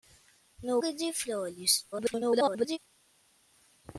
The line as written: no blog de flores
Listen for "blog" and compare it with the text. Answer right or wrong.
wrong